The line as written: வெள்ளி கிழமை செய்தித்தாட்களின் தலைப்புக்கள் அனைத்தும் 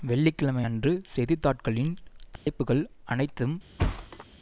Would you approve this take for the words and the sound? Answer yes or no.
no